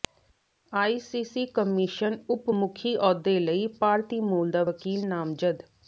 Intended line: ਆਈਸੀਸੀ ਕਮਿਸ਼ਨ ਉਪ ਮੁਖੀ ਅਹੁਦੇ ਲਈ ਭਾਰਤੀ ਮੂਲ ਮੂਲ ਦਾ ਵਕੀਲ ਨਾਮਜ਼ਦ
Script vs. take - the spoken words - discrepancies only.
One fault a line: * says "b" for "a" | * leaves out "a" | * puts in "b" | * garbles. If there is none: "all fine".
* leaves out "ਮੂਲ"